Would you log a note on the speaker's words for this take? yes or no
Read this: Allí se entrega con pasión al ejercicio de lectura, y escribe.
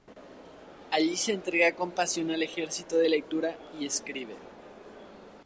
no